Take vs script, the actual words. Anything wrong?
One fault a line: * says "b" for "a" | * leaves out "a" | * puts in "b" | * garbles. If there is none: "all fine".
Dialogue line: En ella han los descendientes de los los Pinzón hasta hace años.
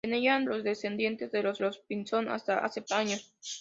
all fine